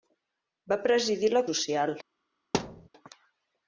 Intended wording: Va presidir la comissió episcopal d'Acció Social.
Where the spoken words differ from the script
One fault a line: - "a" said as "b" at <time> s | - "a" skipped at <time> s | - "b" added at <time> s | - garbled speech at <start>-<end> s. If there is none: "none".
- "comissió episcopal d'Acció" skipped at 1.4 s